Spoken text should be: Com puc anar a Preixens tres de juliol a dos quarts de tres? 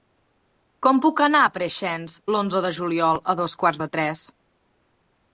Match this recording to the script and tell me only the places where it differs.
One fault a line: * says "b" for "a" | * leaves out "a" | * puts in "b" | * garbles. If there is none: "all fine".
* says "l'onze" for "tres"